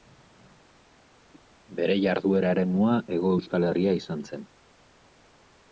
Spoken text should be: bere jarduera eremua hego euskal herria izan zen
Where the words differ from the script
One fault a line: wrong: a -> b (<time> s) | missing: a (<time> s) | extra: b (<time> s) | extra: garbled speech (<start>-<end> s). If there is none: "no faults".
no faults